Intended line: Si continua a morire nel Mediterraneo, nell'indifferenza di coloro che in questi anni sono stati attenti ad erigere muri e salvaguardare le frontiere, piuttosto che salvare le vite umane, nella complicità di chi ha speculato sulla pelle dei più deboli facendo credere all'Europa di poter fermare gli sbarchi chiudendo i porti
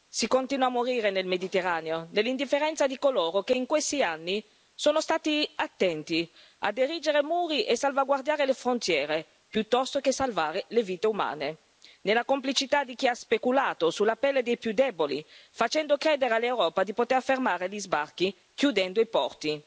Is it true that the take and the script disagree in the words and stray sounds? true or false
false